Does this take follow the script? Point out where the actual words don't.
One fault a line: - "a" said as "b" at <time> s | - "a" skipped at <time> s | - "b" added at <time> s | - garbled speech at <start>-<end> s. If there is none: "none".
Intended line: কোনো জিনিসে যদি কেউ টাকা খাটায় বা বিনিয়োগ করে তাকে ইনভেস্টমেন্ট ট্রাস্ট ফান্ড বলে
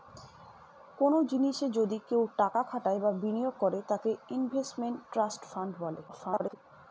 - garbled speech at 6.1-6.6 s